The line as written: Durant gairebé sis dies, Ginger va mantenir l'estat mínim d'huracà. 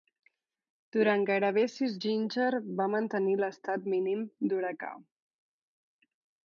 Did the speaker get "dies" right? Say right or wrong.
wrong